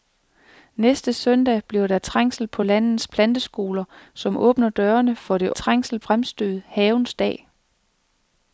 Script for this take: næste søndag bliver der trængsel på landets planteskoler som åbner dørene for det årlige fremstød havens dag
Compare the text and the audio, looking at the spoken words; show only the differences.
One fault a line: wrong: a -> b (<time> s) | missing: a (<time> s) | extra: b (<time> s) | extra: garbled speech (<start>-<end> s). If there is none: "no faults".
wrong: årlige -> trængsel (5.5 s)